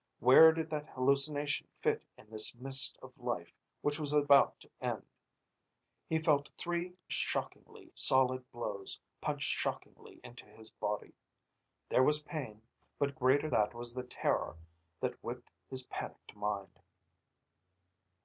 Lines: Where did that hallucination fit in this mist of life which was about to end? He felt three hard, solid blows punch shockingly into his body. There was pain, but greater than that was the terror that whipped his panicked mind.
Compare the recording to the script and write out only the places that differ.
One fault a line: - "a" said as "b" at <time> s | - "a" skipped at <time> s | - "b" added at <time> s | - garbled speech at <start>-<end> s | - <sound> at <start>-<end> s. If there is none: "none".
- "hard" said as "shockingly" at 7.1 s
- "than" skipped at 13.5 s